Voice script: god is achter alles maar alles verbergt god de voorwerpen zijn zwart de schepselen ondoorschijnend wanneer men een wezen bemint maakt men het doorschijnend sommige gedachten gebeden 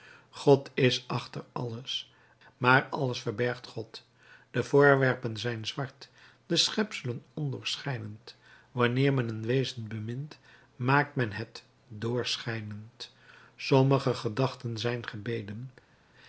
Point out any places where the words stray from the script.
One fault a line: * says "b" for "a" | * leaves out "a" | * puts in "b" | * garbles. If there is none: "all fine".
* puts in "zijn"